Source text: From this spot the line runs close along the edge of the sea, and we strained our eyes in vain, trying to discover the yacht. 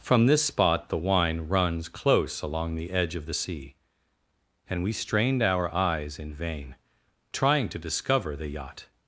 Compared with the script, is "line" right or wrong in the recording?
wrong